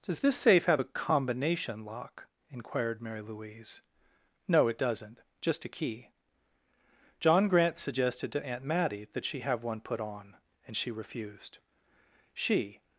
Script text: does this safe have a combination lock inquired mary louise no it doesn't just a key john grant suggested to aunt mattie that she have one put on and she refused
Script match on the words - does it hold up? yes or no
no